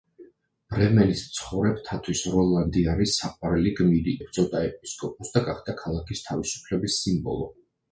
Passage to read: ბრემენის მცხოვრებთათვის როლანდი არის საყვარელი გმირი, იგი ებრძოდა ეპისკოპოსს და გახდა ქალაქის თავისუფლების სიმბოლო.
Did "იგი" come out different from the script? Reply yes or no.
yes